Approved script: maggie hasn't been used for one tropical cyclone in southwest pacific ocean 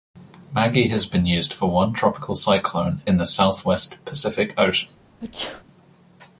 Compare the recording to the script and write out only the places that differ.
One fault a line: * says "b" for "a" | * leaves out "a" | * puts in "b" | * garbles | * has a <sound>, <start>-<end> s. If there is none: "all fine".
* says "has" for "hasn't"
* puts in "the"
* has a sneeze, 5.2-5.6 s